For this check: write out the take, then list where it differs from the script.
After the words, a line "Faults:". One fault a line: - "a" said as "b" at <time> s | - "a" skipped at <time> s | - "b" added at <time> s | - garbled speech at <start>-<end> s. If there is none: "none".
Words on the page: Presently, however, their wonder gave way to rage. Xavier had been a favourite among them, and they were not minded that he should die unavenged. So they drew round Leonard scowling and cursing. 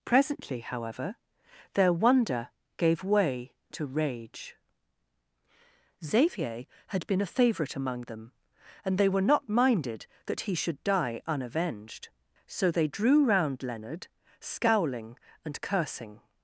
Presently, however, their wonder gave way to rage. Xavier had been a favourite among them, and they were not minded that he should die unavenged. So they drew round Leonard scowling and cursing.
Faults:
none